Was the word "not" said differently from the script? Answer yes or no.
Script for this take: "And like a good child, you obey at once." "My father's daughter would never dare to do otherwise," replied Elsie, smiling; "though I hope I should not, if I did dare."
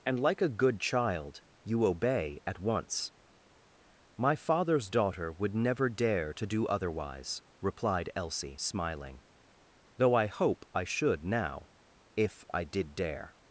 yes